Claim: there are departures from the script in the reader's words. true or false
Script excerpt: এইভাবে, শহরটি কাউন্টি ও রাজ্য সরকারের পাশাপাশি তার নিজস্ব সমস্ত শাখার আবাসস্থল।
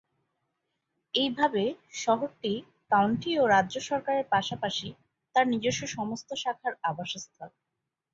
false